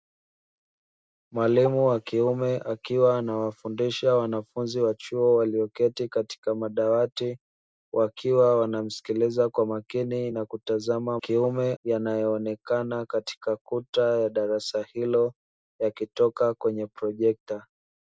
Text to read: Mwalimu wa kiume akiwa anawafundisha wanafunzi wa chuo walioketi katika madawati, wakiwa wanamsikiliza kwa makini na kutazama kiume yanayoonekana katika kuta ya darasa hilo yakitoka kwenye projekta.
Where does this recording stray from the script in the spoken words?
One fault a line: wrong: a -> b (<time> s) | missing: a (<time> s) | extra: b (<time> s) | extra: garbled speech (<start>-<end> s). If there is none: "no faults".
no faults